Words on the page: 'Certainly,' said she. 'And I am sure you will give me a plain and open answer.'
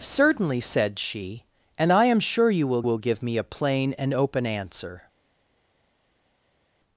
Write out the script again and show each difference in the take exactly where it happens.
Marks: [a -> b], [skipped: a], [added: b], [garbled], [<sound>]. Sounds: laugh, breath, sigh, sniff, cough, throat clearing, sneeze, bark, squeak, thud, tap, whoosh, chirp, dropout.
'Certainly,' said she. 'And I am sure you will [added: will] give me a plain and open answer.'